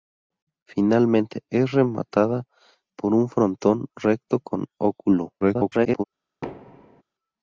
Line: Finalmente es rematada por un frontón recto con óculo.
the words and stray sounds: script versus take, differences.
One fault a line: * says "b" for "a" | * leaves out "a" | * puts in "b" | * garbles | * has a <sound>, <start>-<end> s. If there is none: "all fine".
* garbles
* has a thud, 6.4-7.0 s